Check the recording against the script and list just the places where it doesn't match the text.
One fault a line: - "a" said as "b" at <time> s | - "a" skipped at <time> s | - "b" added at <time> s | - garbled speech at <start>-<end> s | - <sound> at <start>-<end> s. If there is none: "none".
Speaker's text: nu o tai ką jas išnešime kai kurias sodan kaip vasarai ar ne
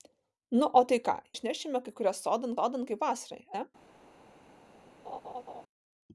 - "jas" skipped at 1.1 s
- "sodan" added at 2.6 s
- "ar" skipped at 3.4 s
- laugh at 5.0-5.6 s